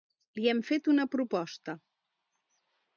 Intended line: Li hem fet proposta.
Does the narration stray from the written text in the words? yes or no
yes